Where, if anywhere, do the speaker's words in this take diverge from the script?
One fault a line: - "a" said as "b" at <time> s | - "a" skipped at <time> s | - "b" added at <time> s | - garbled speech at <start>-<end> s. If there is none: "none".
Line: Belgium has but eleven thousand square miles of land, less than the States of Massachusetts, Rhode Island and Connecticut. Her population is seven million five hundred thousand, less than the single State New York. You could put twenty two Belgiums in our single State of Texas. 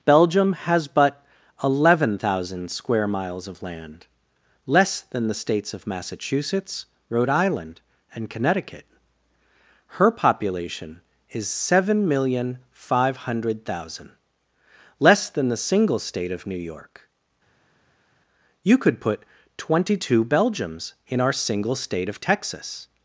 - "of" added at 16.3 s